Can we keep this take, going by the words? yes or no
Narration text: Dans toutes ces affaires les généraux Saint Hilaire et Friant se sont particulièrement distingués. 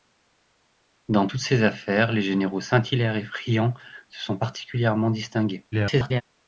no